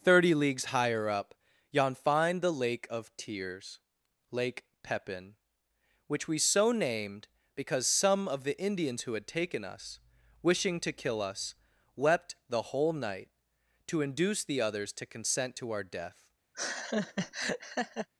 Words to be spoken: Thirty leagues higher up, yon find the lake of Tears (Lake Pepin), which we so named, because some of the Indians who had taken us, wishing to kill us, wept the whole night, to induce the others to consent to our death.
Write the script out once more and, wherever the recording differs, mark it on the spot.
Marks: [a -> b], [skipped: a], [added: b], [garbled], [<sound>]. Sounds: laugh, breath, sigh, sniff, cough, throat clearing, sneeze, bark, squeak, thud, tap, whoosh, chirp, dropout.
Thirty leagues higher up, yon find the lake of Tears (Lake Pepin), which we so named, because some of the Indians who had taken us, wishing to kill us, wept the whole night, to induce the others to consent to our death. [laugh]